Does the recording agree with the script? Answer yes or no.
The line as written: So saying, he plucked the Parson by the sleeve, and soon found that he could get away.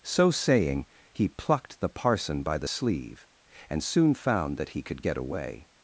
yes